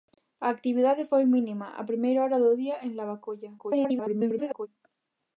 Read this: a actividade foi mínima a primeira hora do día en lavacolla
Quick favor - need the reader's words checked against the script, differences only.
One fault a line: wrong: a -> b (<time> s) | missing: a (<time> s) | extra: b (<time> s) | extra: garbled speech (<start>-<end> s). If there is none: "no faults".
extra: garbled speech (3.6-4.7 s)